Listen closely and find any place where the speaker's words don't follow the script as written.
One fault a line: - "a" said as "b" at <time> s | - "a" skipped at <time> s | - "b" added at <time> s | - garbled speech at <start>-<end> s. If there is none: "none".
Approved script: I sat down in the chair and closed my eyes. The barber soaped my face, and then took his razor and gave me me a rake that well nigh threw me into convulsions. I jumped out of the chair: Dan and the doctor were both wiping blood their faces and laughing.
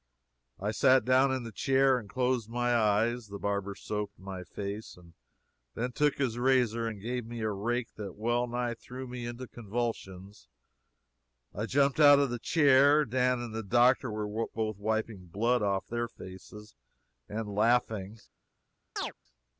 - "me" skipped at 7.4 s
- "off" added at 15.6 s